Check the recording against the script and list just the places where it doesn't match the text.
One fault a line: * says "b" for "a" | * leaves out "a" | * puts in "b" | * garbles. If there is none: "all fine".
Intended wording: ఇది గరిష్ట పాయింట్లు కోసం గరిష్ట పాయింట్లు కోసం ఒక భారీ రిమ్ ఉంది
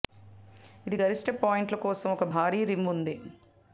* leaves out "గరిష్ట పాయింట్లు కోసం"